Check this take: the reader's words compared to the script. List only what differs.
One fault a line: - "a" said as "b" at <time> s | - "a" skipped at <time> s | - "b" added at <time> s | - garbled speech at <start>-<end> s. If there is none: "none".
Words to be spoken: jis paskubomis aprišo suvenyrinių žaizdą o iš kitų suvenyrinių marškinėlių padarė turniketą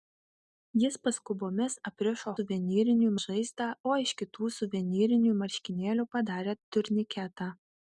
none